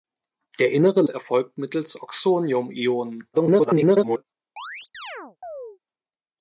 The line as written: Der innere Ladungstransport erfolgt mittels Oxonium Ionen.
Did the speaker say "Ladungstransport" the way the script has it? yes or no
no